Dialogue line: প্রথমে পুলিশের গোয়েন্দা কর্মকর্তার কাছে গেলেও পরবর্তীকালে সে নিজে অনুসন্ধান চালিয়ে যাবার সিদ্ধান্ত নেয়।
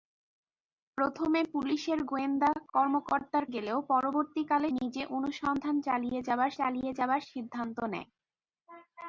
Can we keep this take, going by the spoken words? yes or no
no